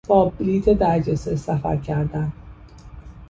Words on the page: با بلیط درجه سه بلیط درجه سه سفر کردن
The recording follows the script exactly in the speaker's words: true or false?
false